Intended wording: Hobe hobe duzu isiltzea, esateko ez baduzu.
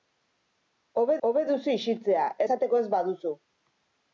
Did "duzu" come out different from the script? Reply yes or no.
no